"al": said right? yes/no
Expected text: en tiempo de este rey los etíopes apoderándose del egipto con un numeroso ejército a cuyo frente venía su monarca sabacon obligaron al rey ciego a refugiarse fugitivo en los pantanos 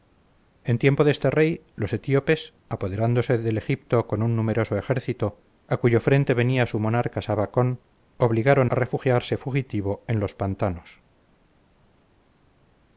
no